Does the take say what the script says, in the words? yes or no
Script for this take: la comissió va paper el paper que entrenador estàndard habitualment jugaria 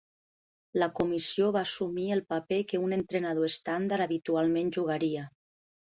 no